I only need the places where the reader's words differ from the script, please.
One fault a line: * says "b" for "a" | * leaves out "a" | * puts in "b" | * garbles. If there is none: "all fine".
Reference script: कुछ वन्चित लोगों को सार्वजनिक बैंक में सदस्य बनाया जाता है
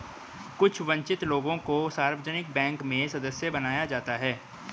all fine